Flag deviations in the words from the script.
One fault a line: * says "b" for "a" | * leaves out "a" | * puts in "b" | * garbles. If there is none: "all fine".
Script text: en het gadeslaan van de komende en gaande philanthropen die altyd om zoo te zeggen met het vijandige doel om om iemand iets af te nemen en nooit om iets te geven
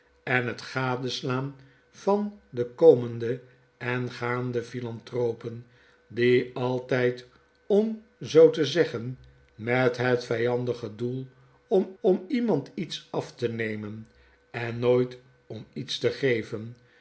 all fine